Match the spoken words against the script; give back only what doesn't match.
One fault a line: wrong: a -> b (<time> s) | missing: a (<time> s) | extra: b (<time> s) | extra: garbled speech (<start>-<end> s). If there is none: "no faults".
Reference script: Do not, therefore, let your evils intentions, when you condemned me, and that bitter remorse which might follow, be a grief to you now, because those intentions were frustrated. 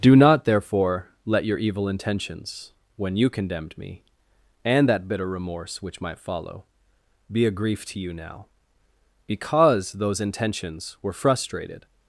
wrong: evils -> evil (1.6 s)